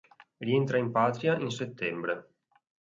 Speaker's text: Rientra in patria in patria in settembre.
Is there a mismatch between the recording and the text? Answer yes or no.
yes